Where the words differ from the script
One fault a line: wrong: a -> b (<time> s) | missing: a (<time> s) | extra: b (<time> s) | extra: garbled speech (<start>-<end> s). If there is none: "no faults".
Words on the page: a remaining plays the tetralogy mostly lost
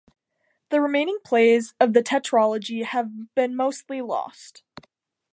wrong: a -> the (0.7 s)
extra: of (1.8 s)
extra: have been (2.9 s)